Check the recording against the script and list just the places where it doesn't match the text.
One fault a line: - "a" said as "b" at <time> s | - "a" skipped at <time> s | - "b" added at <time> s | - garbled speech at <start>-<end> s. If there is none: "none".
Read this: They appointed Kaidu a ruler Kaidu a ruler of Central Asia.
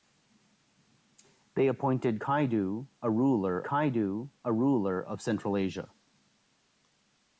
none